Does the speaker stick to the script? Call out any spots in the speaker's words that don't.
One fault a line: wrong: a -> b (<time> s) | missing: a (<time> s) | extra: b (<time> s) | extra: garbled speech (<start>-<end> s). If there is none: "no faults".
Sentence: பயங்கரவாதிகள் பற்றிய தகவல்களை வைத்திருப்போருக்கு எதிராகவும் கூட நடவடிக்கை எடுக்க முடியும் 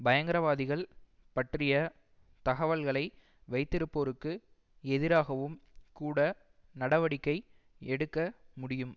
no faults